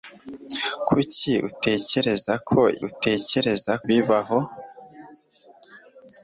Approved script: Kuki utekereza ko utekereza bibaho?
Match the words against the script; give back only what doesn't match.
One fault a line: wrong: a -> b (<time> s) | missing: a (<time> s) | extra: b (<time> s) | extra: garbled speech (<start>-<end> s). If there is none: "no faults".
no faults